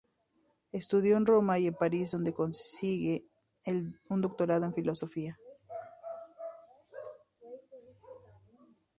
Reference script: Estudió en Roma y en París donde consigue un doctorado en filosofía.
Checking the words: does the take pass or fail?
pass